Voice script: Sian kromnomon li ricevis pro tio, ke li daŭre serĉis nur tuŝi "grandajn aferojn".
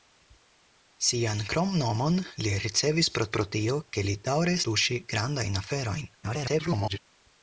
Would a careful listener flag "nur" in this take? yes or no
yes